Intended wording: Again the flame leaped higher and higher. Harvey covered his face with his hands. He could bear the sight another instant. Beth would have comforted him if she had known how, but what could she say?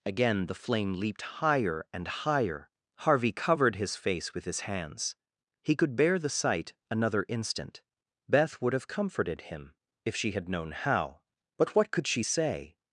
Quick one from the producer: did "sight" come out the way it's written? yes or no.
yes